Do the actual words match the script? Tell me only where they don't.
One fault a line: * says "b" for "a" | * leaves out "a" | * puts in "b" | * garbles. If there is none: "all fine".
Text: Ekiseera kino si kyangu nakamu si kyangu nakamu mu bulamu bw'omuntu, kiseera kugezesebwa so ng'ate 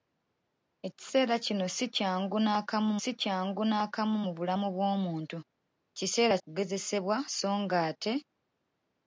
all fine